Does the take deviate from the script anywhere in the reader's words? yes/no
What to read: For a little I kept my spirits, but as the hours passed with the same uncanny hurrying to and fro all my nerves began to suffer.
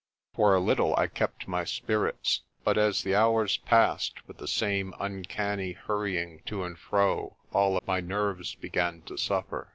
no